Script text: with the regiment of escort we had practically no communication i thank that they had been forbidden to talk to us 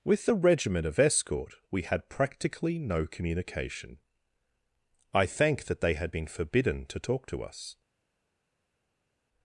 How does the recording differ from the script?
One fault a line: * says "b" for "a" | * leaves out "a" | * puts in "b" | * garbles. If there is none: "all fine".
all fine